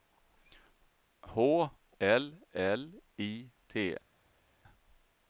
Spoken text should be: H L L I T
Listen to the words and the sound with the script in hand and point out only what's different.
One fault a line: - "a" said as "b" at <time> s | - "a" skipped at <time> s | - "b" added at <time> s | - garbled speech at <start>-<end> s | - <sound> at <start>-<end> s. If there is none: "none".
none